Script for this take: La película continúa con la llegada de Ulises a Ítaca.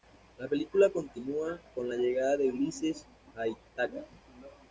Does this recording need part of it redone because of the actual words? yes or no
no